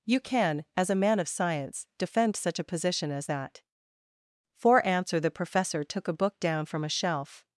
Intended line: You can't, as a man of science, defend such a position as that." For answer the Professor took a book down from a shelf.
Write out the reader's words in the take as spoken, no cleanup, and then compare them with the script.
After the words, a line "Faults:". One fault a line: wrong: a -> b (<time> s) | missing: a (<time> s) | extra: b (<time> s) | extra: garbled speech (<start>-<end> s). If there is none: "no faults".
You can, as a man of science, defend such a position as that." For answer the Professor took a book down from a shelf.
Faults:
wrong: can't -> can (0.2 s)